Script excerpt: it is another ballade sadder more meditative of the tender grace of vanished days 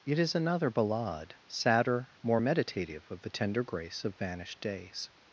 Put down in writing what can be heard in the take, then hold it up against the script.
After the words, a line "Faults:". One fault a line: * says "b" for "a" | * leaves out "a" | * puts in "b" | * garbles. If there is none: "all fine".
it is another ballade sadder more meditative of the tender grace of vanished days
Faults:
all fine